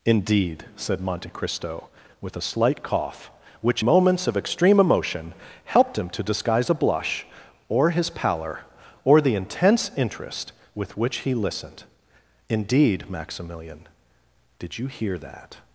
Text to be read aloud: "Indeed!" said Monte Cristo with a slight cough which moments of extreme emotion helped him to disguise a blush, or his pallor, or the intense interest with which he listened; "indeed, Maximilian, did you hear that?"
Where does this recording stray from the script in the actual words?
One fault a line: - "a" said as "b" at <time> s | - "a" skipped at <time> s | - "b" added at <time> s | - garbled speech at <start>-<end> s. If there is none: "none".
none